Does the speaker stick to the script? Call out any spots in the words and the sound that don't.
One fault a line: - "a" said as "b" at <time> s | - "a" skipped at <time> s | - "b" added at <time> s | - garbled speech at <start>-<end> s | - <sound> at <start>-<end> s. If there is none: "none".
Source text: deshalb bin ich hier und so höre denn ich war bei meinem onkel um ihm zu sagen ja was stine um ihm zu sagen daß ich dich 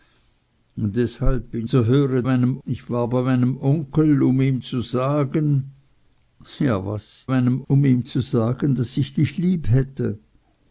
- "ich hier und" skipped at 1.7 s
- "denn" said as "meinem" at 2.2 s
- "stine" said as "meinem" at 7.3 s